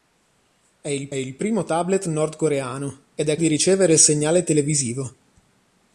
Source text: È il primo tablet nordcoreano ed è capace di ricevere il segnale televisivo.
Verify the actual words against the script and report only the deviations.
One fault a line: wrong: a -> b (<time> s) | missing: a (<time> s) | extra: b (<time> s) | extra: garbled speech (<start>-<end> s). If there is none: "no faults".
extra: il (1.1 s)
missing: capace (3.4 s)